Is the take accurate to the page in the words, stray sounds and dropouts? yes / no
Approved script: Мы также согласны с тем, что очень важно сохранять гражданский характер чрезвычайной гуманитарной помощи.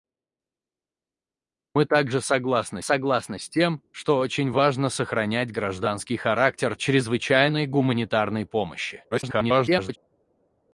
no